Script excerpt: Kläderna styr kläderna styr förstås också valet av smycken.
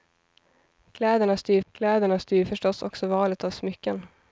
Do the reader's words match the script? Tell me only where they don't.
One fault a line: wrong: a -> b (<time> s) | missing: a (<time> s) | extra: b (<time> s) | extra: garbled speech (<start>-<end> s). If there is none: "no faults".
no faults